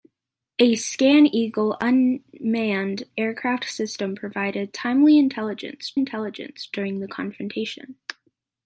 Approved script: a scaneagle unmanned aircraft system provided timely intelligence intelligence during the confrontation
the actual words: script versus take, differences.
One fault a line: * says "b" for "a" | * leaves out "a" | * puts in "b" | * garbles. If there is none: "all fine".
all fine